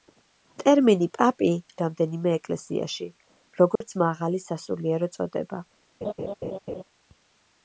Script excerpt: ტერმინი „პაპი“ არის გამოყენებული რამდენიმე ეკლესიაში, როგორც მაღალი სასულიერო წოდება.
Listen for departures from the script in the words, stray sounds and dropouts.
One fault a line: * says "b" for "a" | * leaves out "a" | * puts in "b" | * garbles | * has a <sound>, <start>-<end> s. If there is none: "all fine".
* leaves out "არის გამოყენებული"
* has a dropout, 3.8-3.8 s
* has a laugh, 6.0-6.8 s